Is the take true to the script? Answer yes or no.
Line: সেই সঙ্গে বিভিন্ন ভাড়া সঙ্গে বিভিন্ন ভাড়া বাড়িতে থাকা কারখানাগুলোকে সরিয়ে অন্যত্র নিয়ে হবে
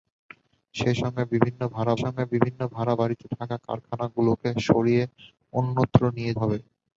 yes